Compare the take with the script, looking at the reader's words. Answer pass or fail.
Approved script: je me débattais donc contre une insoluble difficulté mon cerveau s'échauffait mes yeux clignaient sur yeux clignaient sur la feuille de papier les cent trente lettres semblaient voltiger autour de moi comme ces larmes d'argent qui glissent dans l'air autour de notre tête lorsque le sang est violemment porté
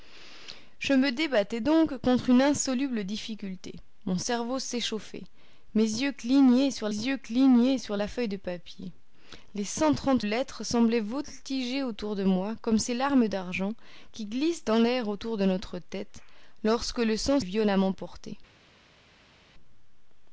pass